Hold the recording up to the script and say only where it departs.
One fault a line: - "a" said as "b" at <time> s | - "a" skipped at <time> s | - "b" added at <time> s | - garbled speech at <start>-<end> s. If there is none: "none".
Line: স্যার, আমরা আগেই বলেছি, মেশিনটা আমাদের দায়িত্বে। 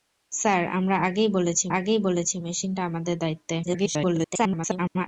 - "আগেই বলেছি" added at 1.7 s
- garbled speech at 3.6-5.1 s